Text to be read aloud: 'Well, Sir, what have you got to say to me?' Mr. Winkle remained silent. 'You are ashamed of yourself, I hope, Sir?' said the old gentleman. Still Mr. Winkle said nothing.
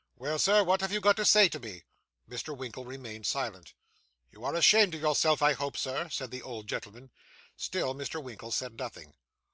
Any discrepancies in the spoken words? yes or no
no